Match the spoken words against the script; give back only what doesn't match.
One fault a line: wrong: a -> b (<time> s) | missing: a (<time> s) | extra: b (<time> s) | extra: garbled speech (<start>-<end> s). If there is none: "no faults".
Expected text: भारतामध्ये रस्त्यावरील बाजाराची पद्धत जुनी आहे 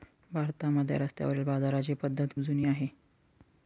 no faults